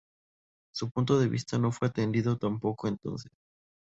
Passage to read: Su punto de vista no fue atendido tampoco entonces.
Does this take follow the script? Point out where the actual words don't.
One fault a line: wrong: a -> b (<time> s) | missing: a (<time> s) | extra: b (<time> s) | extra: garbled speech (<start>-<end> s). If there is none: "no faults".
no faults